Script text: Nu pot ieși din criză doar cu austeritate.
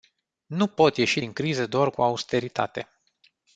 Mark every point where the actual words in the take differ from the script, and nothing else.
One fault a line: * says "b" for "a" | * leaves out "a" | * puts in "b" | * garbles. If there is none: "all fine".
all fine